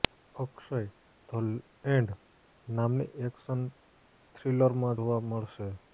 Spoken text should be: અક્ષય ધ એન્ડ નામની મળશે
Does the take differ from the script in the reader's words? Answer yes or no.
yes